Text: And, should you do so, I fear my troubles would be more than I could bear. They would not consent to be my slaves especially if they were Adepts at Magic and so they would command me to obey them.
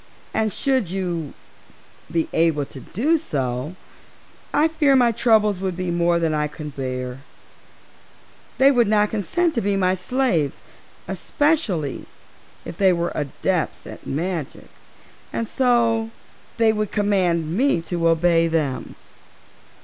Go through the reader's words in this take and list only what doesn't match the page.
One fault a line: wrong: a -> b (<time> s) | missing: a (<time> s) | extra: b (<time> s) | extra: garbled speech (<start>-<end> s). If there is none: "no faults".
extra: be able to (2.1 s)